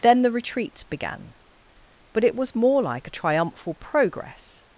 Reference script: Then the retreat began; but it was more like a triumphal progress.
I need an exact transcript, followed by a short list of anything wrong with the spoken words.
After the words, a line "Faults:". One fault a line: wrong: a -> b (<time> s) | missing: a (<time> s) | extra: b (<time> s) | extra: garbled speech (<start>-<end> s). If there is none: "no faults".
Then the retreat began; but it was more like a triumphal progress.
Faults:
no faults